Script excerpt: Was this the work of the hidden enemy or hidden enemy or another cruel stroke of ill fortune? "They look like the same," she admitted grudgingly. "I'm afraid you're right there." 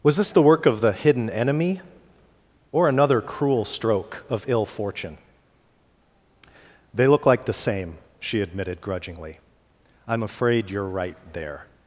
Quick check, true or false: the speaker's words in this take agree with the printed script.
false